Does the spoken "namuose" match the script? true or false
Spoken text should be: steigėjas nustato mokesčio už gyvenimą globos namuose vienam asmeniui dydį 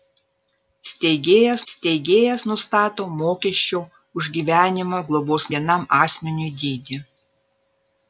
false